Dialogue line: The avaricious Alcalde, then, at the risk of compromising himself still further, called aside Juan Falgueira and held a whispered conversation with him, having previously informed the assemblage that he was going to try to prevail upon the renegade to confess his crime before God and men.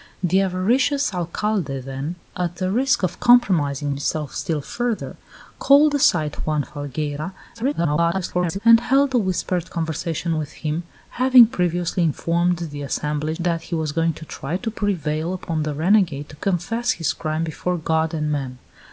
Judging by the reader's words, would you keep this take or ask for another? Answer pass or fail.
fail